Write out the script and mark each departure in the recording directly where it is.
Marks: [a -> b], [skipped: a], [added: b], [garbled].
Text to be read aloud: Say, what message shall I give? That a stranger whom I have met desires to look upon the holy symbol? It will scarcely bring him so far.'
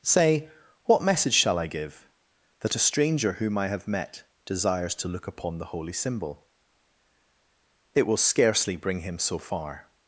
Say, what message shall I give? That a stranger whom I have met desires to look upon the holy symbol? It will scarcely bring him so far.'